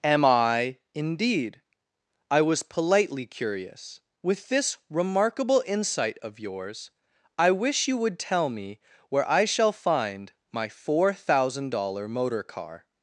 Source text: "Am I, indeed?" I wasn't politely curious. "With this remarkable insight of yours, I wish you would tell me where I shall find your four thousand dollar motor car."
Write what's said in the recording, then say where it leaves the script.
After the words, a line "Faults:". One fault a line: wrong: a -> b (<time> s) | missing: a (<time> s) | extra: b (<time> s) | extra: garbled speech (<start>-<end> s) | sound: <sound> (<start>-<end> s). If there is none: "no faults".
"Am I, indeed?" I was politely curious. "With this remarkable insight of yours, I wish you would tell me where I shall find my four thousand dollar motor car."
Faults:
wrong: wasn't -> was (2.4 s)
wrong: your -> my (10.5 s)